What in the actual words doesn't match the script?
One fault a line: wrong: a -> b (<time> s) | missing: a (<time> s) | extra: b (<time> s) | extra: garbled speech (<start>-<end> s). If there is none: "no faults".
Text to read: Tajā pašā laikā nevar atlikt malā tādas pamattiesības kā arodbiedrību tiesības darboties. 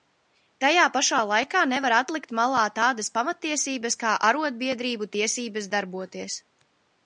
no faults